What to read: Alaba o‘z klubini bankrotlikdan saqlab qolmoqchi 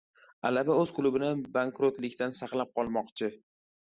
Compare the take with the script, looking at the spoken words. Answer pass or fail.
pass